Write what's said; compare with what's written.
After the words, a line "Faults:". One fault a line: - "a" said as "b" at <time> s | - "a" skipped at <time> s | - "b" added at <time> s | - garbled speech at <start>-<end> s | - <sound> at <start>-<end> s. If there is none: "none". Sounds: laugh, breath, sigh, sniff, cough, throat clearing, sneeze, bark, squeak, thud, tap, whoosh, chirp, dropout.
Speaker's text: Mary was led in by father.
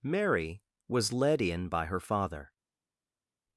Mary was led in by her father.
Faults:
- "her" added at 1.9 s